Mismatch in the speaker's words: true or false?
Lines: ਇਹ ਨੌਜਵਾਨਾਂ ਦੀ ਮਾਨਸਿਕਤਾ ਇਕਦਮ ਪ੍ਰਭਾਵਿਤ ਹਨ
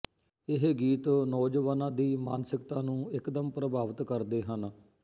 true